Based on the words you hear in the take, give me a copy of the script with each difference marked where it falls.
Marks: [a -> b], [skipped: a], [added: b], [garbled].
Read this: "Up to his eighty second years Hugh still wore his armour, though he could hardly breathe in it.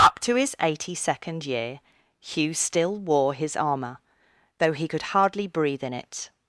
"Up to his eighty second [years -> year] Hugh still wore his armour, though he could hardly breathe in it.